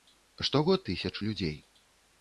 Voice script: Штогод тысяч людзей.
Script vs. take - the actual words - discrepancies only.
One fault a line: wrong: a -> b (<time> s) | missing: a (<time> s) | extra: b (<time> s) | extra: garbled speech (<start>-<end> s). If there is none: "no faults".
no faults